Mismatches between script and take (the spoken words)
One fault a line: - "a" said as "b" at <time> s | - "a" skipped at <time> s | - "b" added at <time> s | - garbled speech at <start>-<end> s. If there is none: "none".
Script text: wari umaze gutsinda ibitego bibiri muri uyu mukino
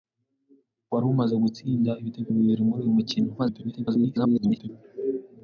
- garbled speech at 3.4-4.7 s